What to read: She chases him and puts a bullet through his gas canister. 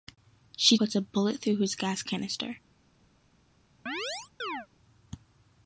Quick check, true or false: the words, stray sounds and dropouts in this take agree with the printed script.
false